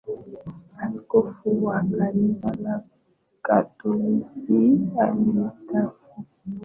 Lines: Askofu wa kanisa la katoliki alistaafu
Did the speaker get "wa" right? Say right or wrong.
right